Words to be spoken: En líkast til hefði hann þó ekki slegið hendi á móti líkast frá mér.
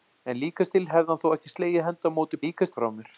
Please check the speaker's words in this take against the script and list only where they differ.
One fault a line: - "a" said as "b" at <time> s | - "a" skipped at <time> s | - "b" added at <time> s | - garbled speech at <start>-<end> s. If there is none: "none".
none